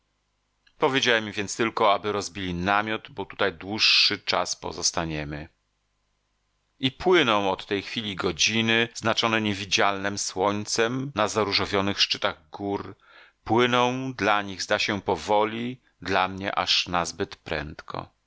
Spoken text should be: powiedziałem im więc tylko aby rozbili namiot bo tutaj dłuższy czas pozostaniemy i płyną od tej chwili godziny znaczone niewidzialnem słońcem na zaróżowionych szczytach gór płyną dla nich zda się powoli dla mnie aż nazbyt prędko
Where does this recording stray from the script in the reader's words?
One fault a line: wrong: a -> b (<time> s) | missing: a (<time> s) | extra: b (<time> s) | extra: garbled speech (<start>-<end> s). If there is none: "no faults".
no faults